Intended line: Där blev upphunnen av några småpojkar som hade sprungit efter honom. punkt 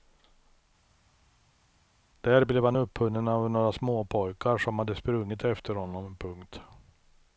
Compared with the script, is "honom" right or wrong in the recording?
right